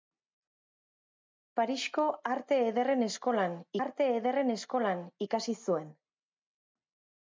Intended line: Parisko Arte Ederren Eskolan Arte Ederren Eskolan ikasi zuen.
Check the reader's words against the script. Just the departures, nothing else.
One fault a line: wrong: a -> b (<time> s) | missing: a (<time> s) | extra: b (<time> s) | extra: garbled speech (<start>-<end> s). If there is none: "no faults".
no faults